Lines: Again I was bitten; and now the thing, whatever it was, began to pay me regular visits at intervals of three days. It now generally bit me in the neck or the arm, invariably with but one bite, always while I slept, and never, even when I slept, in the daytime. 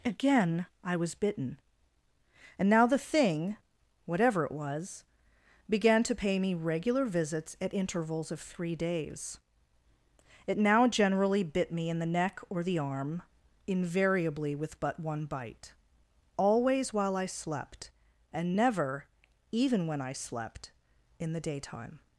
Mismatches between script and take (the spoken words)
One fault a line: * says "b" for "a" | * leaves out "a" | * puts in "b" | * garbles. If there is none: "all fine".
all fine